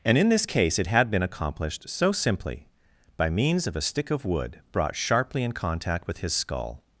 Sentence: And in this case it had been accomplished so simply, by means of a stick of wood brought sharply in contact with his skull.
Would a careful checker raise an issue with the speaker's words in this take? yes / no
no